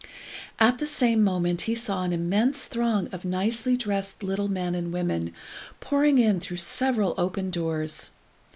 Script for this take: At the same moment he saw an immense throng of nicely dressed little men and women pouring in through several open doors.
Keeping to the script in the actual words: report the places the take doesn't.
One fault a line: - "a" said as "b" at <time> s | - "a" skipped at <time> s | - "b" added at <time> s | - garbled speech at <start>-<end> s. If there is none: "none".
none